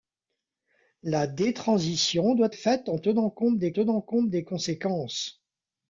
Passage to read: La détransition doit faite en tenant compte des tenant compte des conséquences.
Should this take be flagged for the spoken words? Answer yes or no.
no